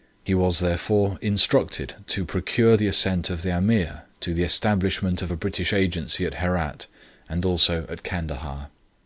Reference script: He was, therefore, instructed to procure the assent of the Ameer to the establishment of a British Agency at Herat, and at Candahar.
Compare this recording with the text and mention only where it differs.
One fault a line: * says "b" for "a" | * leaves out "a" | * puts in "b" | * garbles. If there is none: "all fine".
* puts in "also"